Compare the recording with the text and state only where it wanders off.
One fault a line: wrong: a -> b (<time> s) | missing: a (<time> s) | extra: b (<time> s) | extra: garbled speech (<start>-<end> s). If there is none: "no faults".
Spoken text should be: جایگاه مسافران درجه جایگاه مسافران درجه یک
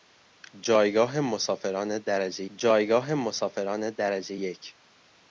no faults